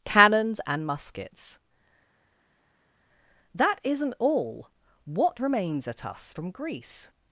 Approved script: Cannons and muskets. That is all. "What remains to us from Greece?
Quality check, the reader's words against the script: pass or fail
fail